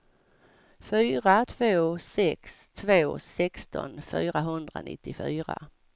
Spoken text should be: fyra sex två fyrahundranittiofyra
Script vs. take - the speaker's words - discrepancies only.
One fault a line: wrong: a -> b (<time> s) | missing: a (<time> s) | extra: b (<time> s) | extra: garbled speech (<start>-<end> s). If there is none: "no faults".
extra: två (1.4 s)
extra: sexton (3.2 s)